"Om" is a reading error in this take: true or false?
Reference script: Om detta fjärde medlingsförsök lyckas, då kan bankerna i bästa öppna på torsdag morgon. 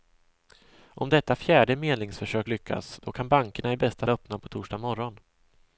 false